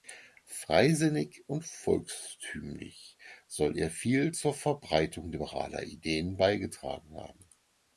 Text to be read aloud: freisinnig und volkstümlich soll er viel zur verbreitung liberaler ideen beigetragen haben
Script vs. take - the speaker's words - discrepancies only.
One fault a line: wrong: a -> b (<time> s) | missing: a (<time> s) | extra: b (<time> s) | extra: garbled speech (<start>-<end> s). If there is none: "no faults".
no faults